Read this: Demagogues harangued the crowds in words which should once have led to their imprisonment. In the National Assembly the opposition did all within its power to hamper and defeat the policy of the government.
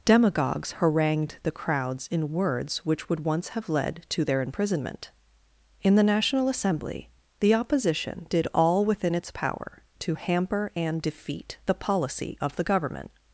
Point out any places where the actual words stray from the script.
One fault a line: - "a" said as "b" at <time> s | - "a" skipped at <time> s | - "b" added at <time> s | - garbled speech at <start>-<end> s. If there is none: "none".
- "should" said as "would" at 3.1 s